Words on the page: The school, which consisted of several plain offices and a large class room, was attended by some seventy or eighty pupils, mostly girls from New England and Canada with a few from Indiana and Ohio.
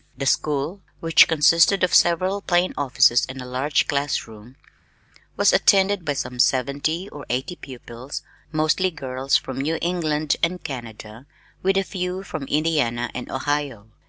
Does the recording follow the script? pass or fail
pass